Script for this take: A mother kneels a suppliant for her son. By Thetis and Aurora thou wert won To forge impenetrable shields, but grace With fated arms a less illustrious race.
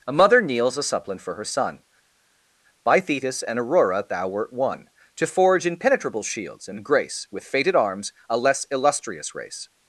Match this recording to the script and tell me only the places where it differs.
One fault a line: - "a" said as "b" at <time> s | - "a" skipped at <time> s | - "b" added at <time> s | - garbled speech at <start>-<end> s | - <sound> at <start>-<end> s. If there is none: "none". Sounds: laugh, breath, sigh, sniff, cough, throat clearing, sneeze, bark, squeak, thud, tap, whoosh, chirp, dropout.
- "but" said as "and" at 6.7 s